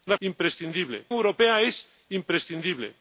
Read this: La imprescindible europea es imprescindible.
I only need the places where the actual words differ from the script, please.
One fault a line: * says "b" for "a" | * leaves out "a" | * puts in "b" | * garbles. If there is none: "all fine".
all fine